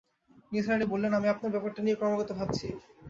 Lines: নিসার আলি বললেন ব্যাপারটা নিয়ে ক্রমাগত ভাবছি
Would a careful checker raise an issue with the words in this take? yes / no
yes